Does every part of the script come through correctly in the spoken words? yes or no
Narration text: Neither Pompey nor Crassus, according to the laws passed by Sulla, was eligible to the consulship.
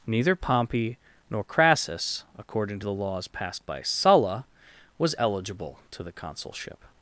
yes